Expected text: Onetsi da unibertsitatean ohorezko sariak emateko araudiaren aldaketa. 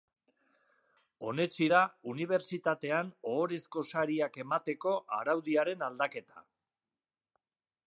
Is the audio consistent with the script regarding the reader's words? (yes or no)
yes